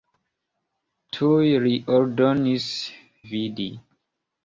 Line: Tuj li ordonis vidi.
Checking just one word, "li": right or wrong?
right